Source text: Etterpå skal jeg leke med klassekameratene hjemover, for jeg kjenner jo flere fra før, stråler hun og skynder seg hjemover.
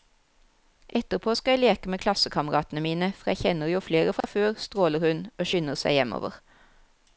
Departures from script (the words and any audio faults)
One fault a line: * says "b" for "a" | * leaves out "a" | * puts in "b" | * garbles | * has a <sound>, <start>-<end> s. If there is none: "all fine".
* says "mine" for "hjemover"
* has a dropout, 4.2-4.2 s